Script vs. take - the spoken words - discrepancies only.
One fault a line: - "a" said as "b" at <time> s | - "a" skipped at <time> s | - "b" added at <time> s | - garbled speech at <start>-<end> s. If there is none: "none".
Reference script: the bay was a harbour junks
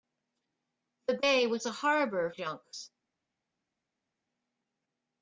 none